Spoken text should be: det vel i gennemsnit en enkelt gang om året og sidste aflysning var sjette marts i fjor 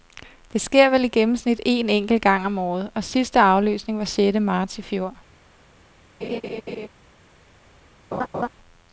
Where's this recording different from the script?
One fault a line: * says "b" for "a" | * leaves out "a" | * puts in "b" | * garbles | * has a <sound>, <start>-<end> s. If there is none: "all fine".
* puts in "sker"
* has a laugh, 6.2-6.9 s
* has a laugh, 8.1-8.5 s